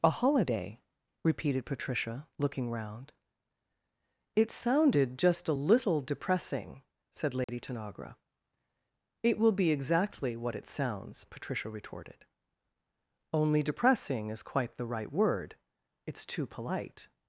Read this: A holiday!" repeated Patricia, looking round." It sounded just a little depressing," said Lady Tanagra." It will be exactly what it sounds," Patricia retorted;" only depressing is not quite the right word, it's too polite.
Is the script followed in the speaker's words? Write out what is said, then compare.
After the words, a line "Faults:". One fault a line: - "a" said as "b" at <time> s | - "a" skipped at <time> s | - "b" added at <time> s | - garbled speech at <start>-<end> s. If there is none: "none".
A holiday!" repeated Patricia, looking round." It sounded just a little depressing," said Lady Tanagra." It will be exactly what it sounds," Patricia retorted;" only depressing is quite the right word, it's too polite.
Faults:
- "not" skipped at 14.4 s